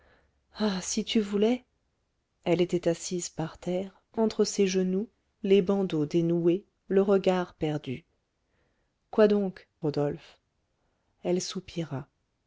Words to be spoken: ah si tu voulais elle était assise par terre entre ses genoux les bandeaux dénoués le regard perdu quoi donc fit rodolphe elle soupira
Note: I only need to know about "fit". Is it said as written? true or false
false